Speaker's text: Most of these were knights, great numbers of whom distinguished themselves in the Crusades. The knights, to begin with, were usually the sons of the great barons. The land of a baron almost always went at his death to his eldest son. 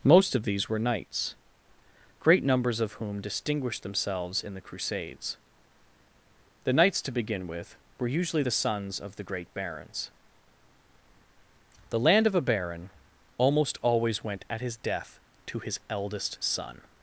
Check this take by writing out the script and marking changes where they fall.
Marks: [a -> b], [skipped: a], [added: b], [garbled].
Most of these were knights, great numbers of whom distinguished themselves in the Crusades. The knights, to begin with, were usually the sons of the great barons. The land of a baron almost always went at his death to his eldest son.